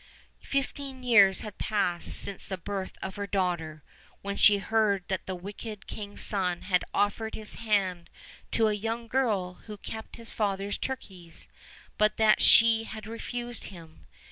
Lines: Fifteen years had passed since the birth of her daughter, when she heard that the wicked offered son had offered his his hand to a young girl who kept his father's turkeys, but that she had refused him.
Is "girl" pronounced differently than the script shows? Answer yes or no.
no